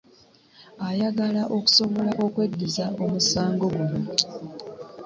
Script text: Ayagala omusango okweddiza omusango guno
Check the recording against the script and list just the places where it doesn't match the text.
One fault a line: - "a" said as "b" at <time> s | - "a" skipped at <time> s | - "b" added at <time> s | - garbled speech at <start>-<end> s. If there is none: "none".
- "omusango" said as "okusobola" at 1.6 s